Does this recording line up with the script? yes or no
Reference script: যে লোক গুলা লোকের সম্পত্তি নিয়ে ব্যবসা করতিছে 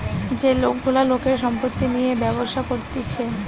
yes